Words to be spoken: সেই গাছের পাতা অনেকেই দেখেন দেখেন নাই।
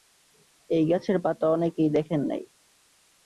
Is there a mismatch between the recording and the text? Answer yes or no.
yes